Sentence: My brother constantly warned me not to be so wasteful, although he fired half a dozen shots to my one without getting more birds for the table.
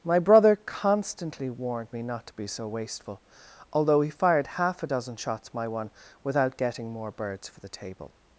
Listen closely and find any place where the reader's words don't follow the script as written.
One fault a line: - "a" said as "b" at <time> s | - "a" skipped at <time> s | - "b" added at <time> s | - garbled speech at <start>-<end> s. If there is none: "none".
- "to" skipped at 5.5 s